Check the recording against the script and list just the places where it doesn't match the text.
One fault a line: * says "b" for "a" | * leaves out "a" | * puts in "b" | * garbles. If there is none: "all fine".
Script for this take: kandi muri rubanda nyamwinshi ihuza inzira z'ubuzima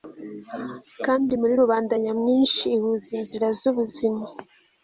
all fine